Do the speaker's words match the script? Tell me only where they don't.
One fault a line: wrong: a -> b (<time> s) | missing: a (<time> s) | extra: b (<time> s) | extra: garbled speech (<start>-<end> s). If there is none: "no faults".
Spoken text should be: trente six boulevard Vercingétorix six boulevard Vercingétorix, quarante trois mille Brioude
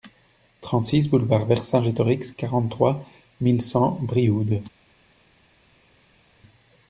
missing: six boulevard Vercingétorix (2.3 s)
extra: cent (3.6 s)